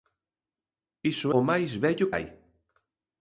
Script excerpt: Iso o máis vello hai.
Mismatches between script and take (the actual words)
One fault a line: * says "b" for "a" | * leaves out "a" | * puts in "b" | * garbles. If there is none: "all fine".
all fine